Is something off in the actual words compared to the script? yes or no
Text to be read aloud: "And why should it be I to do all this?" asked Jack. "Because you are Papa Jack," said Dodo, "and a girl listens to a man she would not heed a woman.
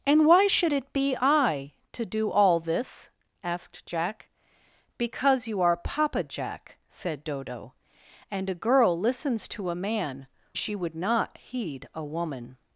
no